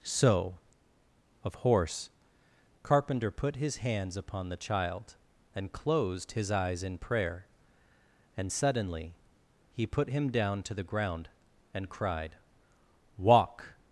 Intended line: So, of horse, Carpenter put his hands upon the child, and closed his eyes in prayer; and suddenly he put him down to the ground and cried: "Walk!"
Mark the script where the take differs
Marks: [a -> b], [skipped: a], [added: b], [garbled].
So, of horse, Carpenter put his hands upon the child, and closed his eyes in prayer; and suddenly he put him down to the ground and cried: "Walk!"